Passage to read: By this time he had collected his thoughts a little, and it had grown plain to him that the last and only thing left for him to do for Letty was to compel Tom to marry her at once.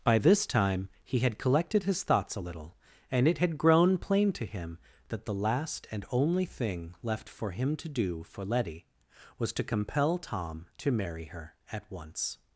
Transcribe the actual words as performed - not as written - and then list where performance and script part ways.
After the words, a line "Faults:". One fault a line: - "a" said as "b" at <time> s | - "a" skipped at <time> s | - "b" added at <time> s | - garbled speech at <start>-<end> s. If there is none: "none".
By this time he had collected his thoughts a little, and it had grown plain to him that the last and only thing left for him to do for Letty was to compel Tom to marry her at once.
Faults:
none